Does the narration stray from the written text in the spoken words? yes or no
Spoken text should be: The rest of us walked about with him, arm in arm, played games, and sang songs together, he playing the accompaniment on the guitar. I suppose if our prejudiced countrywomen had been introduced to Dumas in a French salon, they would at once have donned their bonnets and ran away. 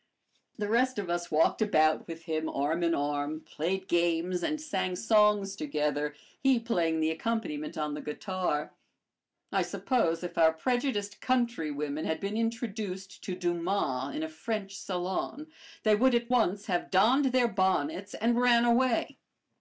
no